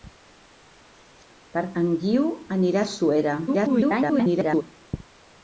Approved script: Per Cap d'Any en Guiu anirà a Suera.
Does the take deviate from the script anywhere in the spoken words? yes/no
yes